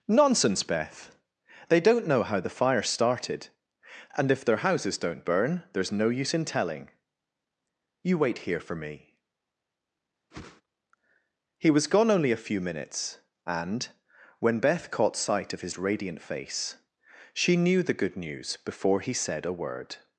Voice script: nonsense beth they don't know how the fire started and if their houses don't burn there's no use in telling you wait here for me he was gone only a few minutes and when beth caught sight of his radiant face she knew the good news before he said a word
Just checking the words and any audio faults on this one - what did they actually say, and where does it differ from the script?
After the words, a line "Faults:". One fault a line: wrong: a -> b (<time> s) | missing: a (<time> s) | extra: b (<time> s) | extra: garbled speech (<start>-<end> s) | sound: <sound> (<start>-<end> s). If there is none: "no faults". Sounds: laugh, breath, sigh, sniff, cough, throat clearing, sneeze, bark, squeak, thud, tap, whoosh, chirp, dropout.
nonsense beth they don't know how the fire started and if their houses don't burn there's no use in telling you wait here for me he was gone only a few minutes and when beth caught sight of his radiant face she knew the good news before he said a word
Faults:
sound: whoosh (10.3-10.6 s)